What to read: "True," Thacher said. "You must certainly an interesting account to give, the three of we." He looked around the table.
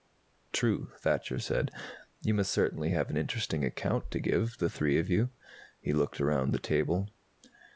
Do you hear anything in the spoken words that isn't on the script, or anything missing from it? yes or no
yes